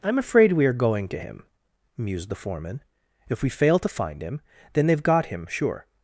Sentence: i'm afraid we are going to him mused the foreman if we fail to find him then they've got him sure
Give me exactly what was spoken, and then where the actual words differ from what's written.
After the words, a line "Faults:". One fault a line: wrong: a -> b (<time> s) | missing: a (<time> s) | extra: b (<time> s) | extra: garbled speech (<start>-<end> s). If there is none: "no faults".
i'm afraid we are going to him mused the foreman if we fail to find him then they've got him sure
Faults:
no faults